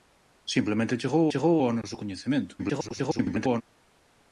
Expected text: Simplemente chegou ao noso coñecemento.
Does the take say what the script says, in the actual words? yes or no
no